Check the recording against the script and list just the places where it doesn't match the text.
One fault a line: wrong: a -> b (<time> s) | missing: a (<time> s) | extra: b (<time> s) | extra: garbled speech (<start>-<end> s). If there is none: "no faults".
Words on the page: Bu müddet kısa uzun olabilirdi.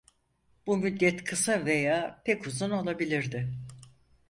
extra: veya pek (1.6 s)